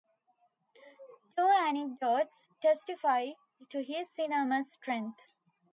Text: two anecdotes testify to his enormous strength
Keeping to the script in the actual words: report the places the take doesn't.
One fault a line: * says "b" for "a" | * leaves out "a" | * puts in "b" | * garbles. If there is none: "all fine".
all fine